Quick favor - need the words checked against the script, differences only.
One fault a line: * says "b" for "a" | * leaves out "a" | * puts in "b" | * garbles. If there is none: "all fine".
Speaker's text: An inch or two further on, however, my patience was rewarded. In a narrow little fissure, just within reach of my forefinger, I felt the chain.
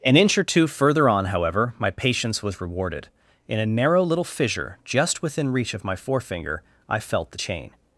all fine